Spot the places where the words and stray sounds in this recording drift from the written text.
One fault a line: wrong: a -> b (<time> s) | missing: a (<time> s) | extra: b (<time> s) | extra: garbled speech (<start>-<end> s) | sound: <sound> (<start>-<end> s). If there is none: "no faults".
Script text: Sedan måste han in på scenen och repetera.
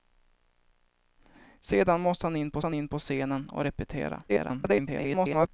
extra: han in på (2.6 s)
extra: garbled speech (4.3-5.5 s)